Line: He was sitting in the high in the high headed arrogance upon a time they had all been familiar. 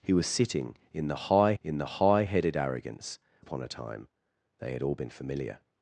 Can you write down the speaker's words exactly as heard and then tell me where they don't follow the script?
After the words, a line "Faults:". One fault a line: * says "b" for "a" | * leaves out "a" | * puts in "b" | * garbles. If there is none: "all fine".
He was sitting in the high in the high headed arrogance upon a time they had all been familiar.
Faults:
all fine